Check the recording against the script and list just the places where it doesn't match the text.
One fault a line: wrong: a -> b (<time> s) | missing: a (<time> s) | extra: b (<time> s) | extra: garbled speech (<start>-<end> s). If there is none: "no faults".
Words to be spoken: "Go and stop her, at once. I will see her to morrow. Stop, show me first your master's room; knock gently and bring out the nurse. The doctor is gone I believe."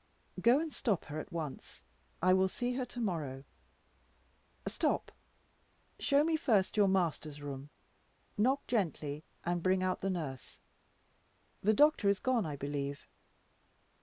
no faults